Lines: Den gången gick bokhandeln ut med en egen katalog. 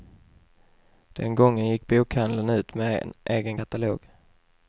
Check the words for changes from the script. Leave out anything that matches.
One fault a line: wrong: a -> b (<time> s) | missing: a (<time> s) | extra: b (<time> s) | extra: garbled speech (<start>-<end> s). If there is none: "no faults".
no faults